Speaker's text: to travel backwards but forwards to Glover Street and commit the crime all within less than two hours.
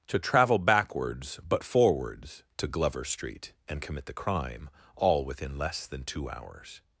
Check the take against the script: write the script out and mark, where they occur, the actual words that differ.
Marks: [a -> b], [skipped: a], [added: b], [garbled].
to travel backwards but forwards to Glover Street and commit the crime all within less than two hours.